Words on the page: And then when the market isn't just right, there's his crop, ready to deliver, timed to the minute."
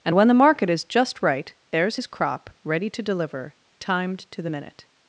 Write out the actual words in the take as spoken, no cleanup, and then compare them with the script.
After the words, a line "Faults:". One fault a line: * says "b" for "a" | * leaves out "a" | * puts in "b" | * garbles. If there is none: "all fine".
And when the market is just right, there's his crop, ready to deliver, timed to the minute."
Faults:
* leaves out "then"
* says "is" for "isn't"